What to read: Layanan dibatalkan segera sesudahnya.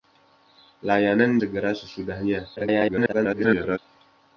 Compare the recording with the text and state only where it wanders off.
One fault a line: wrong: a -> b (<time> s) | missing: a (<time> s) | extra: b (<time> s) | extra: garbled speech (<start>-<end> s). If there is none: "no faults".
missing: dibatalkan (1.4 s)
extra: garbled speech (2.6-3.8 s)